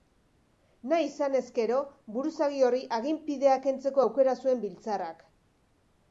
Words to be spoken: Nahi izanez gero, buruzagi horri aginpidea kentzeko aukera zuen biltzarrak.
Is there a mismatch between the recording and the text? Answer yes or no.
no